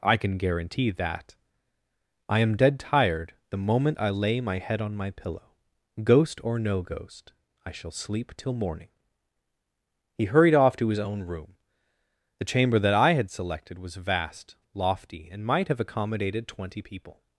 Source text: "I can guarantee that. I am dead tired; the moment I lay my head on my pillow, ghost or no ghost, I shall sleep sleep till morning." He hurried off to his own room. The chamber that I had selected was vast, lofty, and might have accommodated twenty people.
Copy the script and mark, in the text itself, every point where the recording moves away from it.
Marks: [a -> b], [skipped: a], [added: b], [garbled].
"I can guarantee that. I am dead tired; the moment I lay my head on my pillow, ghost or no ghost, I shall sleep [skipped: sleep] till morning." He hurried off to his own room. The chamber that I had selected was vast, lofty, and might have accommodated twenty people.